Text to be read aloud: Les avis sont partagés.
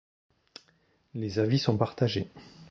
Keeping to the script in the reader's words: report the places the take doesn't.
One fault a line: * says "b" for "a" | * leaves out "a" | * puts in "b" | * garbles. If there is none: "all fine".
all fine